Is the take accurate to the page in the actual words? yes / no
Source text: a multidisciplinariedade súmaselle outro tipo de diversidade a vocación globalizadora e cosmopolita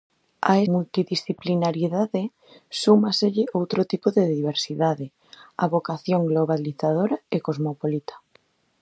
yes